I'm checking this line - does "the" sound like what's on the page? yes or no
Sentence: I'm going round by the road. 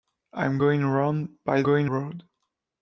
no